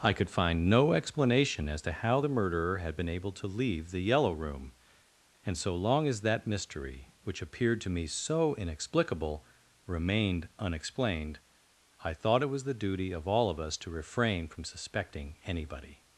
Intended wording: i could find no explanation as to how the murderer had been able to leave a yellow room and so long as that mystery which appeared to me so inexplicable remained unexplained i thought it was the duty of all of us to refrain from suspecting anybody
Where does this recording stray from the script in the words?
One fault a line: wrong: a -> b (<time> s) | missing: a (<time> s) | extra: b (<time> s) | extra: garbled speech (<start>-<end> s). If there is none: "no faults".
wrong: a -> the (3.9 s)